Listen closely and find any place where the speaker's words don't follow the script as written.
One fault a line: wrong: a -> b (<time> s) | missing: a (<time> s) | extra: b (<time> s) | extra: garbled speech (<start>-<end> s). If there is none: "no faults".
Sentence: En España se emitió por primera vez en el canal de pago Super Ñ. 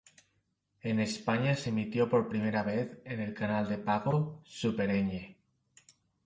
no faults